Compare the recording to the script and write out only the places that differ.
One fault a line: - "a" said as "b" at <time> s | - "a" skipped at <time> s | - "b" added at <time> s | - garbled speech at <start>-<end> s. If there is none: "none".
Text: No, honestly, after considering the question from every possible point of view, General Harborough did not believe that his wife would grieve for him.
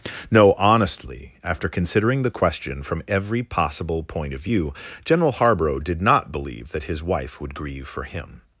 none